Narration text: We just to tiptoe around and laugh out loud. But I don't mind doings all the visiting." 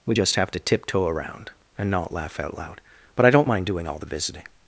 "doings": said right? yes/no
no